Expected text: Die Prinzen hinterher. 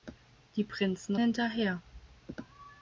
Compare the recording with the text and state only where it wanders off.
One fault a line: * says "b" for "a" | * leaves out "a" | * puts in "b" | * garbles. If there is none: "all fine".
all fine